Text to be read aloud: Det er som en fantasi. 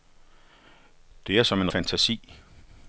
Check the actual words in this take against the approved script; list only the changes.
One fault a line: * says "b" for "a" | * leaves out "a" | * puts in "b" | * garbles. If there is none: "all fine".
all fine